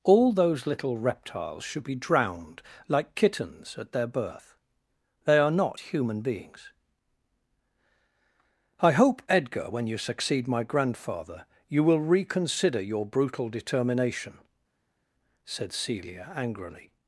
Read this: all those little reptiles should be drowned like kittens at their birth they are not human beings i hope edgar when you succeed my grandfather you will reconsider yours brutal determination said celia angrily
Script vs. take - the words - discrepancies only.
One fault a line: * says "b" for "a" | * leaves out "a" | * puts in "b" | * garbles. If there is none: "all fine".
* says "your" for "yours"